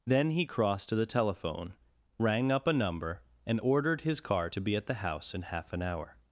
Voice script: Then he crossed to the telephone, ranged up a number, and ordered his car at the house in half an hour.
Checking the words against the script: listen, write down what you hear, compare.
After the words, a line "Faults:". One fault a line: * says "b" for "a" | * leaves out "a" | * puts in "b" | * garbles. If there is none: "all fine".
Then he crossed to the telephone, rang up a number, and ordered his car to be at the house in half an hour.
Faults:
* says "rang" for "ranged"
* puts in "to be"